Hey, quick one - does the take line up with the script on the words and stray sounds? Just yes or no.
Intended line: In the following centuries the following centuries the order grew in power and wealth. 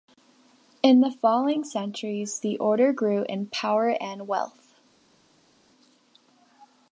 no